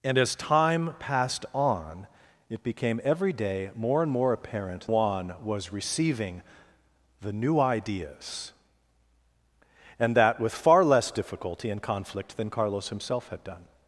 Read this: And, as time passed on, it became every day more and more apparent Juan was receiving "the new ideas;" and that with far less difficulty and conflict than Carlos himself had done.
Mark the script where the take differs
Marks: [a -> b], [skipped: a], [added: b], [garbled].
And, as time passed on, it became every day more and more apparent Juan was receiving "the new ideas;" and that with far less difficulty and conflict than Carlos himself had done.